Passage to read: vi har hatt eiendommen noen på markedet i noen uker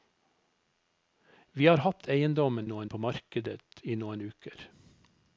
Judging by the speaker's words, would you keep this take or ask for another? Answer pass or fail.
pass